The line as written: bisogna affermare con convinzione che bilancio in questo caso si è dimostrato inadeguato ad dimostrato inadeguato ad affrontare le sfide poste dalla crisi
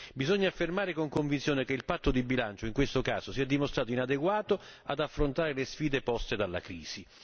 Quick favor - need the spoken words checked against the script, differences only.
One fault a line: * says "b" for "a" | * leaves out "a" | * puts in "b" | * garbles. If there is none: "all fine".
* puts in "il patto di"
* leaves out "dimostrato inadeguato ad"